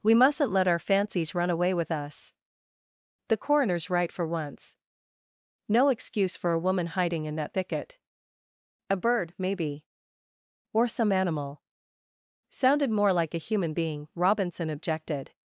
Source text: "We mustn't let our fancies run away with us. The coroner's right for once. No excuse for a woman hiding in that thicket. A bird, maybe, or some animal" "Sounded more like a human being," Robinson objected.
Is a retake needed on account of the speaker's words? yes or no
no